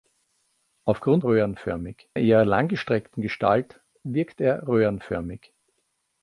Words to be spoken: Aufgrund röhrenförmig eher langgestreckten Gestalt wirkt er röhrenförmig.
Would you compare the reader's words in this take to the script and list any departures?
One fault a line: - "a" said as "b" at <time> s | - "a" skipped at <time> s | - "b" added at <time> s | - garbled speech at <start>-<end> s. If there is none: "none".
none